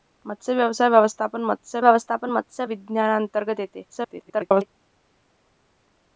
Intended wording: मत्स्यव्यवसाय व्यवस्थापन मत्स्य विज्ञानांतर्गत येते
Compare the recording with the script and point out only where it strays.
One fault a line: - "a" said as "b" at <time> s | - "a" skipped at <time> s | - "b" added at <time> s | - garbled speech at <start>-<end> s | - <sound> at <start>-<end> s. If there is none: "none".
- "व्यवस्थापन मत्स्य" added at 1.8 s
- garbled speech at 3.9-4.7 s